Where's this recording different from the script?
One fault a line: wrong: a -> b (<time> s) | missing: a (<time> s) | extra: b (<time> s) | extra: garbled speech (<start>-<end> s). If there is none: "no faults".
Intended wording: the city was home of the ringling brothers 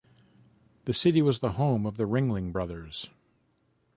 extra: the (1.4 s)